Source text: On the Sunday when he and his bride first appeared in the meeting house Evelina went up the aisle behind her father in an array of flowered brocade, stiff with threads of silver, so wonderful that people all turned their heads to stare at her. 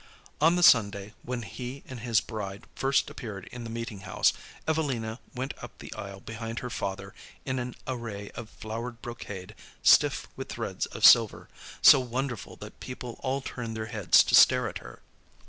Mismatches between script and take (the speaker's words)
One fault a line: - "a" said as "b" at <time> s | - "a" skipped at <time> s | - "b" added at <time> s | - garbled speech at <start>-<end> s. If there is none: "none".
none